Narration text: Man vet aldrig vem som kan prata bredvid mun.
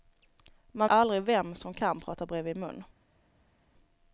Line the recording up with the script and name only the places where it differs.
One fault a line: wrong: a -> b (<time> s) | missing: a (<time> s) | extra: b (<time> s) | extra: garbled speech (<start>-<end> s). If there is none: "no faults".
missing: vet (0.9 s)